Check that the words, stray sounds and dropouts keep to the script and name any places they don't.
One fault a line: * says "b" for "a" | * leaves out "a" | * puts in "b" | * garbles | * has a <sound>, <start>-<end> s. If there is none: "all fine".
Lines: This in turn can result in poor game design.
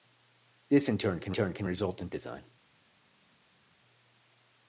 * puts in "turn can"
* leaves out "poor game"